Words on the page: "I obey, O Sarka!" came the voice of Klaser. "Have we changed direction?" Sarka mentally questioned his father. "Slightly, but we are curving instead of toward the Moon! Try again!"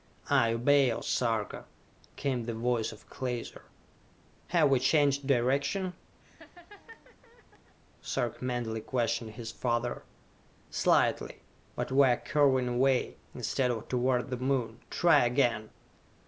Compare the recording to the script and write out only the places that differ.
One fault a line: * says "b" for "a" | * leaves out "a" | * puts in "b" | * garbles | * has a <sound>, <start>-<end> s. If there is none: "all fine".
* has a laugh, 6.2-7.8 s
* puts in "away"